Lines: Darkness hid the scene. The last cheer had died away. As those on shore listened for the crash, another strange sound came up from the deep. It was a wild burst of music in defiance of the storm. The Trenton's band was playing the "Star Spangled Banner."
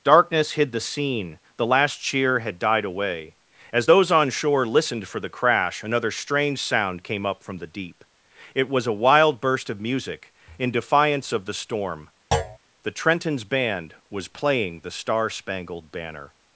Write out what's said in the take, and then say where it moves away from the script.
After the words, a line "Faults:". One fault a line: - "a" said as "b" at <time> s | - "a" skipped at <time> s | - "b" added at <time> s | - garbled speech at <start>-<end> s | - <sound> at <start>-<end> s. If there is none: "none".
Darkness hid the scene. The last cheer had died away. As those on shore listened for the crash, another strange sound came up from the deep. It was a wild burst of music in defiance of the storm. The Trenton's band was playing the "Star Spangled Banner."
Faults:
- thud at 12.3-12.6 s